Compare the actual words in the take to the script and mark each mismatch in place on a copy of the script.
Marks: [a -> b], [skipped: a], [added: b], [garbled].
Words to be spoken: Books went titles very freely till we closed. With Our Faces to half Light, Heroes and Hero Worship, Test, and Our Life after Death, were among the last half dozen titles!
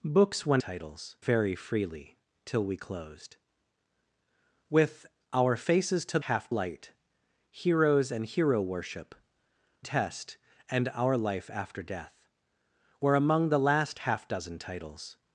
Books went titles very freely till we closed. With Our Faces to half Light, Heroes and Hero Worship, Test, and Our Life after Death, were among the last half dozen titles!